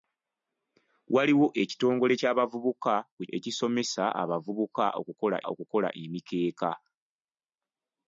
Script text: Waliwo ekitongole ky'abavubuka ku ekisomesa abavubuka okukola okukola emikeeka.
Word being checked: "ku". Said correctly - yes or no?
yes